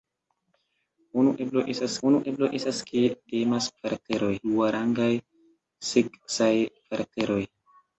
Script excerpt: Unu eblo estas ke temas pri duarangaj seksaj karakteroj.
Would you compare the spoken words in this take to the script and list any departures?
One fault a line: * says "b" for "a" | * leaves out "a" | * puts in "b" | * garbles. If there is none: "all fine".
* puts in "unu eblo estas"
* says "karakteroj" for "pri"